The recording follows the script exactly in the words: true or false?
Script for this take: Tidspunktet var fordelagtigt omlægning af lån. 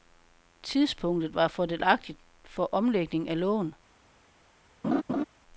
false